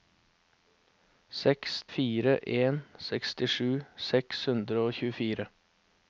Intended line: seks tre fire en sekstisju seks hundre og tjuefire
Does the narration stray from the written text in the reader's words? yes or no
yes